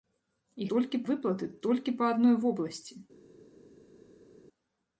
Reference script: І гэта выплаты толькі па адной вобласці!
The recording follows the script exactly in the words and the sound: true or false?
false